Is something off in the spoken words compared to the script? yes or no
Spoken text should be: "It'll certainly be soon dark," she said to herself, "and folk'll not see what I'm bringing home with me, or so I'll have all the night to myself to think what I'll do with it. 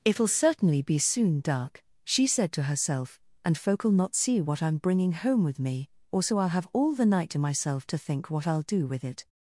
no